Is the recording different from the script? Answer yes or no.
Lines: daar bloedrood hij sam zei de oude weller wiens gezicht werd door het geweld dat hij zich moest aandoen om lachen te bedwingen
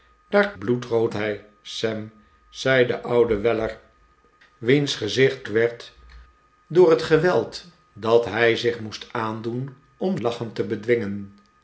no